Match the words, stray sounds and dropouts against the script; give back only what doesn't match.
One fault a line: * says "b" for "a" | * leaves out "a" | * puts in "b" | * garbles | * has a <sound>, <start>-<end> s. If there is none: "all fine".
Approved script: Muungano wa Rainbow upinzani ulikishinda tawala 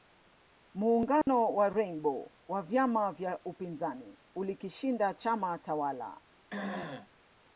* has a dropout, 1.2-1.3 s
* puts in "wa vyama vya"
* puts in "chama"
* has a throat clearing, 6.5-7.1 s